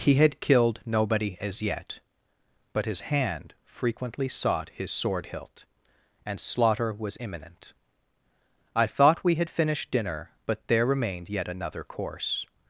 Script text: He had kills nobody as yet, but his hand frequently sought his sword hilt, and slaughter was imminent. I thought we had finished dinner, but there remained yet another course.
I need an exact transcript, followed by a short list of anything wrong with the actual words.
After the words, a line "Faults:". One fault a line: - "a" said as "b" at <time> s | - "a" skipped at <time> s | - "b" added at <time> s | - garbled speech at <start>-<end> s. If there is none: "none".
He had killed nobody as yet, but his hand frequently sought his sword hilt, and slaughter was imminent. I thought we had finished dinner, but there remained yet another course.
Faults:
- "kills" said as "killed" at 0.4 s